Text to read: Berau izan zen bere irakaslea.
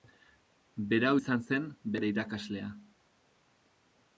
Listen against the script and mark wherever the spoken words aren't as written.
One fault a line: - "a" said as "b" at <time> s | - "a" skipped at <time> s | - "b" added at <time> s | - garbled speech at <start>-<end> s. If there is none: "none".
none